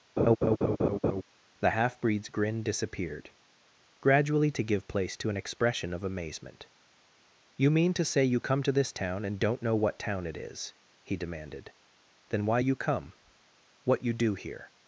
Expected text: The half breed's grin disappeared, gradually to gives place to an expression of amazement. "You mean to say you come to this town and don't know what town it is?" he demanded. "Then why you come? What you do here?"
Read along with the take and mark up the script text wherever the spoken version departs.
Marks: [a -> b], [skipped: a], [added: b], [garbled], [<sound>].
[laugh] The half breed's grin disappeared, gradually to [gives -> give] place to an expression of amazement. "You mean to say you come to this town and don't know what town it is?" he demanded. "Then why you come? What you do here?"